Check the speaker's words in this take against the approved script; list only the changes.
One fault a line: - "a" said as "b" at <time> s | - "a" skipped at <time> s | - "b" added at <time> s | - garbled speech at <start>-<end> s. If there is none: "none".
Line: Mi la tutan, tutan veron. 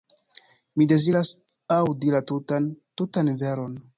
- "deziras aŭdi" added at 0.9 s